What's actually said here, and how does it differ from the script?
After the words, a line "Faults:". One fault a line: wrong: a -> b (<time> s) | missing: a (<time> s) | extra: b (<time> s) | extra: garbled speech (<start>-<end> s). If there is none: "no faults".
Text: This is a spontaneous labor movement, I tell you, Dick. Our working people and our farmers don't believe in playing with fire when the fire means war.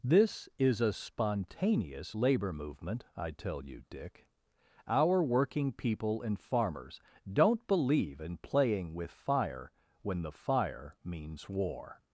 This is a spontaneous labor movement, I tell you, Dick. Our working people and farmers don't believe in playing with fire when the fire means war.
Faults:
missing: our (6.4 s)